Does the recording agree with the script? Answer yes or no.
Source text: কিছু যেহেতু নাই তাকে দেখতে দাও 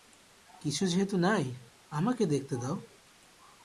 no